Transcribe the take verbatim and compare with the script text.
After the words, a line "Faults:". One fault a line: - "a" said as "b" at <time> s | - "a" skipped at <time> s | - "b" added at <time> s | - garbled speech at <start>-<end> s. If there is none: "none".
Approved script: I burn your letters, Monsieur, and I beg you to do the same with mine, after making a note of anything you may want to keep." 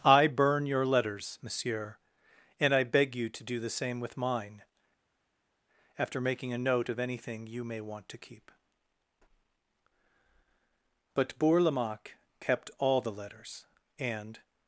I burn your letters, Monsieur, and I beg you to do the same with mine, after making a note of anything you may want to keep." But Bourlamaque kept all the letters, and
Faults:
- "But Bourlamaque kept all the letters and" added at 11.1 s